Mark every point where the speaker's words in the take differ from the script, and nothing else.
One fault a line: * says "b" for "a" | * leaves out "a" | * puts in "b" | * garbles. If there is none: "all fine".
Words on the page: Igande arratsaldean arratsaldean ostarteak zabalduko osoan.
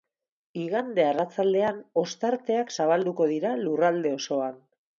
* leaves out "arratsaldean"
* puts in "dira lurralde"